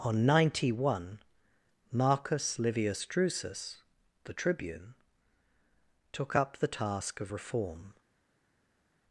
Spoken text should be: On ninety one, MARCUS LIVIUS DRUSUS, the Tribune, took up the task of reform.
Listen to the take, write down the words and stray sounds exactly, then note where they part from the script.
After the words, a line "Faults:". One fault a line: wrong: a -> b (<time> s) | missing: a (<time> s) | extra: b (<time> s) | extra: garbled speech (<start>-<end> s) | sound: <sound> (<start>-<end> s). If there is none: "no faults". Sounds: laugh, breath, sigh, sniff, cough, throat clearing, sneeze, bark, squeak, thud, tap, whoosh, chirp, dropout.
On ninety one, MARCUS LIVIUS DRUSUS, the Tribune, took up the task of reform.
Faults:
no faults